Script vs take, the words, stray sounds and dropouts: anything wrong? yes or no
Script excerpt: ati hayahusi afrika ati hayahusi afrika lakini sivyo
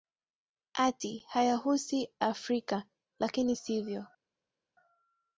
yes